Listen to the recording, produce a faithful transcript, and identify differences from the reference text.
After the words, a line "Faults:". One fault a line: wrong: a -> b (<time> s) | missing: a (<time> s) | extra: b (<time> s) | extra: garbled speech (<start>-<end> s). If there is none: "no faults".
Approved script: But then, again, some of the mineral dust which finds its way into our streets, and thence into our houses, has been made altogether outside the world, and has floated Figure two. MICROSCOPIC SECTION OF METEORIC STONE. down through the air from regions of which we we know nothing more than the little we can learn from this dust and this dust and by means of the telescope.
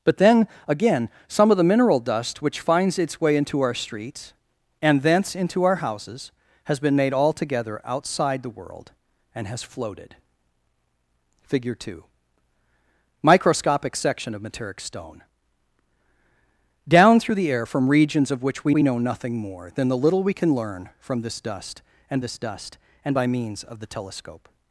But then, again, some of the mineral dust which finds its way into our streets, and thence into our houses, has been made altogether outside the world, and has floated Figure two. MICROSCOPIC SECTION OF METEORIC STONE. down through the air from regions of which we we know nothing more than the little we can learn from this dust and this dust and by means of the telescope.
Faults:
no faults